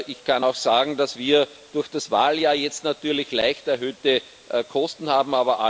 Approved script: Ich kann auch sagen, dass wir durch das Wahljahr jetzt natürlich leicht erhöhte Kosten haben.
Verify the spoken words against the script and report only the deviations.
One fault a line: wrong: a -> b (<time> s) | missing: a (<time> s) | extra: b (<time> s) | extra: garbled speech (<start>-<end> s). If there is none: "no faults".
no faults